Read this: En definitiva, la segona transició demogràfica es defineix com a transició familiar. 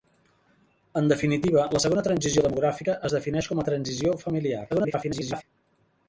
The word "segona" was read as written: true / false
true